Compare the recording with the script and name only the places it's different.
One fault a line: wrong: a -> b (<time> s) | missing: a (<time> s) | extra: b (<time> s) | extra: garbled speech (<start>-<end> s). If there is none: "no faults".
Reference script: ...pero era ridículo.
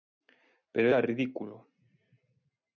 no faults